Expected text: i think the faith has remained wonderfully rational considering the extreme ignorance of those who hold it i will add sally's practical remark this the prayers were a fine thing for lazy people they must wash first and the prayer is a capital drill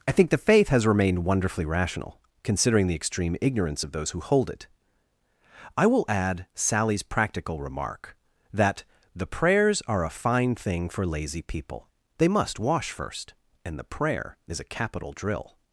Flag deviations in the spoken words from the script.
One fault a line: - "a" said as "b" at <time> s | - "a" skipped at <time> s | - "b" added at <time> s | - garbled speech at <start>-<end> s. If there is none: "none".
- "this" said as "that" at 8.5 s
- "were" said as "are" at 9.9 s